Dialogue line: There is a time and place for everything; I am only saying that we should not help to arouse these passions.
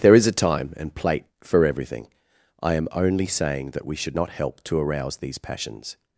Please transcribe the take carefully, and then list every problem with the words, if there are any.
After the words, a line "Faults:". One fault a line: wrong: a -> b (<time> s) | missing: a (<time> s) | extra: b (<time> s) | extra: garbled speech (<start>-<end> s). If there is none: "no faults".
There is a time and plate for everything; I am only saying that we should not help to arouse these passions.
Faults:
wrong: place -> plate (0.9 s)